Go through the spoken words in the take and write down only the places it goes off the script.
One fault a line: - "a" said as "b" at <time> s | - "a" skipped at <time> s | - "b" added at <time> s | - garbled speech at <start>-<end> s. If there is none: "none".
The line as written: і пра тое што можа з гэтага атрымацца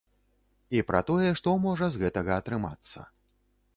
none